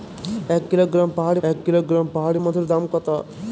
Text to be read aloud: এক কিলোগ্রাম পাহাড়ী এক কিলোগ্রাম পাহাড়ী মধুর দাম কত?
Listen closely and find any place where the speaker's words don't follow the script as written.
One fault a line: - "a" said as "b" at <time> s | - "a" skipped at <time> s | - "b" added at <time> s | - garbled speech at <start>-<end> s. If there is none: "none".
none